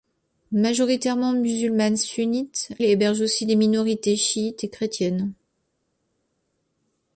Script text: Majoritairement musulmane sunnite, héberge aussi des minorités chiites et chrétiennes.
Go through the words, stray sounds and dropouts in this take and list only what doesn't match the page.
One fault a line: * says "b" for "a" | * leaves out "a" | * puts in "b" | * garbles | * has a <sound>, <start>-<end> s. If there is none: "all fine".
all fine